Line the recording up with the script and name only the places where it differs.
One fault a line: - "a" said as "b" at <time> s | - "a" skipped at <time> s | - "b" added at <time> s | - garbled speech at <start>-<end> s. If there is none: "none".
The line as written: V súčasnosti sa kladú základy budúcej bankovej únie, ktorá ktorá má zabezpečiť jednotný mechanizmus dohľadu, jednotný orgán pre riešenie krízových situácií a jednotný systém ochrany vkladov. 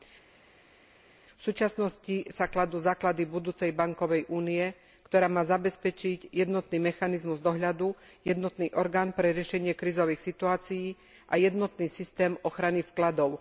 - "ktorá" skipped at 5.3 s